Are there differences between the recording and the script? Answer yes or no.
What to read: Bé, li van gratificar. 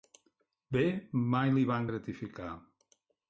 yes